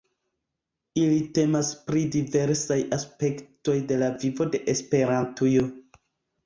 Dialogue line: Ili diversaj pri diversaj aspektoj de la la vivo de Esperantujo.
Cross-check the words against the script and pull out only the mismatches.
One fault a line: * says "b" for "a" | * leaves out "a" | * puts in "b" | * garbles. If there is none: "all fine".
* says "temas" for "diversaj"
* leaves out "la"